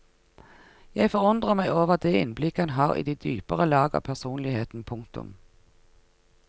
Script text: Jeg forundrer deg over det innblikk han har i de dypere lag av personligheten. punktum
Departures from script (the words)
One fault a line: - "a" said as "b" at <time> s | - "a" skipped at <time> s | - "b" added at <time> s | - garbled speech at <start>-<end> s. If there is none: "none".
- "deg" said as "meg" at 1.6 s